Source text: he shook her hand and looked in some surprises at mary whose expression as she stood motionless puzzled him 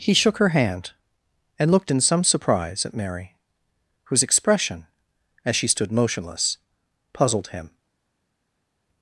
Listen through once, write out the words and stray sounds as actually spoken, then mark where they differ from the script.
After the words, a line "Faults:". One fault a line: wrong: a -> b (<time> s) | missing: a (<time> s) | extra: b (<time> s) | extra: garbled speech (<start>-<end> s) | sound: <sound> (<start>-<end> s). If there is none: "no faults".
he shook her hand and looked in some surprise at mary whose expression as she stood motionless puzzled him
Faults:
wrong: surprises -> surprise (2.2 s)